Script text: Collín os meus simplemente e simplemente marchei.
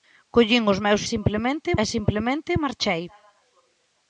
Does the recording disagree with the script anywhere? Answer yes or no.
no